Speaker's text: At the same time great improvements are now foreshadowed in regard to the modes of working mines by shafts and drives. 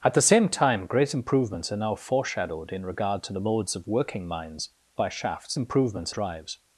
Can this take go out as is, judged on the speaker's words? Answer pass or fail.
fail